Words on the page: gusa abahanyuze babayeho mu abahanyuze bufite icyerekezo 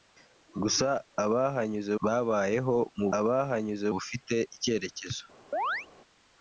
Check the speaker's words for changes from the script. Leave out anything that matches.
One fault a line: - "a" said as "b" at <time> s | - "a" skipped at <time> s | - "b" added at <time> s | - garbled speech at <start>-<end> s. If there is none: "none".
none